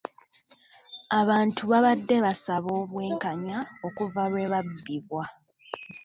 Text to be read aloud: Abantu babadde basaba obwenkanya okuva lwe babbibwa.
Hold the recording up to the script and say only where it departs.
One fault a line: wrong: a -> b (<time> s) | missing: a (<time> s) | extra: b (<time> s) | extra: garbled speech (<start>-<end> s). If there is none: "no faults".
no faults